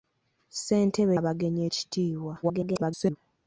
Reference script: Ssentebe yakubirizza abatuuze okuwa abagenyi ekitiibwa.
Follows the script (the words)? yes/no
no